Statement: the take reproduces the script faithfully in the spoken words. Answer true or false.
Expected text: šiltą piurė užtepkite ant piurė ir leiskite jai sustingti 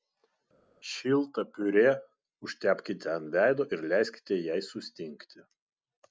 false